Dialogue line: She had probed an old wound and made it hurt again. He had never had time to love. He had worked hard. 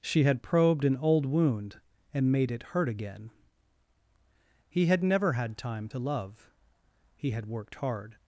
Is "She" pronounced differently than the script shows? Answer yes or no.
no